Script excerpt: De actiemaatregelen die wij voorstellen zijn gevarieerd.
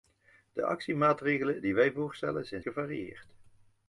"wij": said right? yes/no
yes